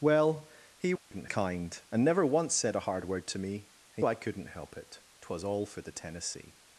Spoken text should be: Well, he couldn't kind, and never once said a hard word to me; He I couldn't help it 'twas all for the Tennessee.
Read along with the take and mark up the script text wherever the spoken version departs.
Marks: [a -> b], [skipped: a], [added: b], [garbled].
Well, he couldn't kind, and never once said a hard word to me; He I couldn't help it 'twas all for the Tennessee.